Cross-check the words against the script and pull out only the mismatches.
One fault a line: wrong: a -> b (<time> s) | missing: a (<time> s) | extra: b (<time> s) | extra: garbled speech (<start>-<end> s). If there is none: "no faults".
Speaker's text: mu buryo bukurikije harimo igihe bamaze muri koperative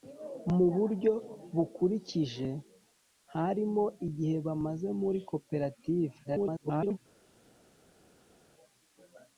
extra: garbled speech (6.2-7.0 s)